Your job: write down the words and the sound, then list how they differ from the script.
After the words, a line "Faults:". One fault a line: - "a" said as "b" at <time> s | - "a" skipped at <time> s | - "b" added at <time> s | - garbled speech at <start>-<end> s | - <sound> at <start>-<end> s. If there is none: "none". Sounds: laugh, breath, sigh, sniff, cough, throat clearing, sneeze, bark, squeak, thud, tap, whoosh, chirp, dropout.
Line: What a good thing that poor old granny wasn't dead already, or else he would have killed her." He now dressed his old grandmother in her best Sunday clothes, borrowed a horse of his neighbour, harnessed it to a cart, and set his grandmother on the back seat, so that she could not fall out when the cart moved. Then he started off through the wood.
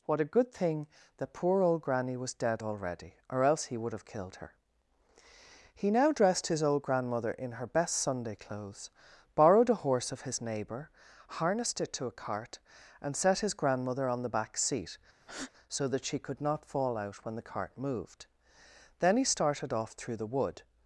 What a good thing that poor old granny was dead already, or else he would have killed her." He now dressed his old grandmother in her best Sunday clothes, borrowed a horse of his neighbour, harnessed it to a cart, and set his grandmother on the back seat, so that she could not fall out when the cart moved. Then he started off through the wood.
Faults:
- "wasn't" said as "was" at 2.2 s
- breath at 15.2-15.5 s